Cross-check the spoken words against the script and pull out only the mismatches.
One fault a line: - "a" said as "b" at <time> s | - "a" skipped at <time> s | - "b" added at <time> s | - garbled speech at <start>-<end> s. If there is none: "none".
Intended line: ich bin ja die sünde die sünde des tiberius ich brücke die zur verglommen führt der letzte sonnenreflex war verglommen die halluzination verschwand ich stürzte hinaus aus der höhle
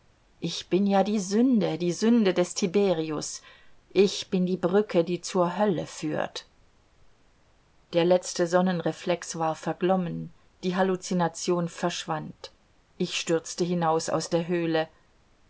- "bin die" added at 4.3 s
- "verglommen" said as "hölle" at 5.6 s